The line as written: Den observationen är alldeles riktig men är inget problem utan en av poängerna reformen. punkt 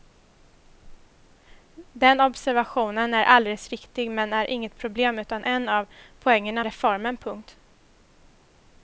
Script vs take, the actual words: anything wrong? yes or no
no